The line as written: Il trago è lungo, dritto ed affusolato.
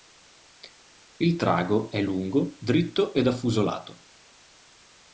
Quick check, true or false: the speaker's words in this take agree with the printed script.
true